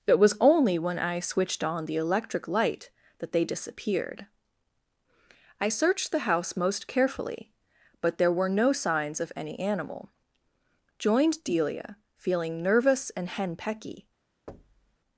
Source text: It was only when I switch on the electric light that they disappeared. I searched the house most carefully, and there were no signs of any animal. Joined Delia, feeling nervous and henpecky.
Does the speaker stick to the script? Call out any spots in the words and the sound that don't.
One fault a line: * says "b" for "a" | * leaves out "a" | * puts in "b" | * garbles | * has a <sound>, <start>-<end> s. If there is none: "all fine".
* says "switched" for "switch"
* says "but" for "and"
* has a thud, 14.5-15.0 s